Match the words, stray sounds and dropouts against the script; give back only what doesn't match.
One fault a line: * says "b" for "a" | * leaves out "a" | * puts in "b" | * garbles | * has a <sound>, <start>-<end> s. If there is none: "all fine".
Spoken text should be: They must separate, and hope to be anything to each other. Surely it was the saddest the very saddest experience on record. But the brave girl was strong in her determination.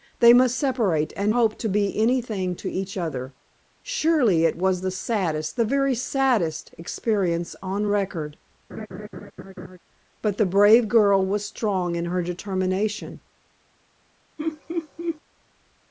* has a laugh, 8.7-9.8 s
* has a laugh, 14.4-15.2 s